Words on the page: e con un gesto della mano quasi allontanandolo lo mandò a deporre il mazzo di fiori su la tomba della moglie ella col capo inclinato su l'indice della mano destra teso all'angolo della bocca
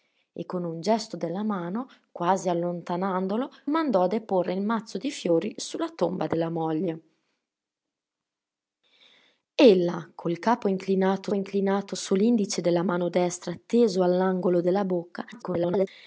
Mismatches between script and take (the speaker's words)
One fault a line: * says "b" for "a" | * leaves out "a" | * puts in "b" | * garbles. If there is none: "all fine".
* leaves out "lo"
* puts in "inclinato"
* garbles